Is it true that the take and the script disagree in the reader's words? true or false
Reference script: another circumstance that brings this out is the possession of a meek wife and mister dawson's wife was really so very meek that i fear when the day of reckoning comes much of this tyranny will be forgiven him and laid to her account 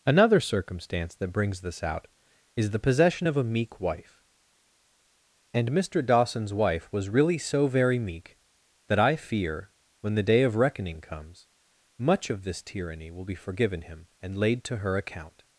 false